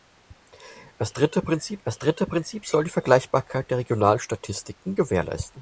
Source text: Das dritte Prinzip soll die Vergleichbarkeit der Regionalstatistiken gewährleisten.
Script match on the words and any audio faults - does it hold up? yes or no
no